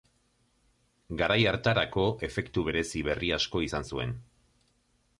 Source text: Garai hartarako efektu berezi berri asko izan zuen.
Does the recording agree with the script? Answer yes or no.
yes